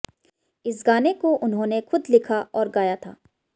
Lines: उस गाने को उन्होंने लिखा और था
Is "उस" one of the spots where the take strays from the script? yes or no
yes